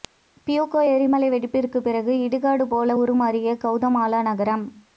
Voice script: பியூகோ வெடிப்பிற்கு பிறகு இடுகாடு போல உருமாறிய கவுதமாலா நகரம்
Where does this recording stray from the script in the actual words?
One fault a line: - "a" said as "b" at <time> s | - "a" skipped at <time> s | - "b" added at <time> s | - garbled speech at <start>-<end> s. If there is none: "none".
- "எரிமலை" added at 0.9 s